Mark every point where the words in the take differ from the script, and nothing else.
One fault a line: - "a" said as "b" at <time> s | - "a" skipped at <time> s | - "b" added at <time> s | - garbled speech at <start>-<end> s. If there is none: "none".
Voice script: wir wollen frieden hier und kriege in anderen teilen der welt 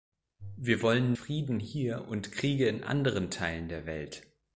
none